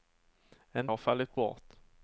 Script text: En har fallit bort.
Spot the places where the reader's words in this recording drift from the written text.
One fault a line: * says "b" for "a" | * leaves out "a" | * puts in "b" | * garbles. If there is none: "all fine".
all fine